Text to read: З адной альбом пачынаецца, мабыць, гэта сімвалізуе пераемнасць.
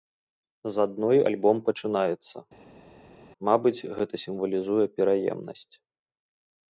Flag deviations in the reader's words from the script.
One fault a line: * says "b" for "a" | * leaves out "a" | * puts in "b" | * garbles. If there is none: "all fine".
all fine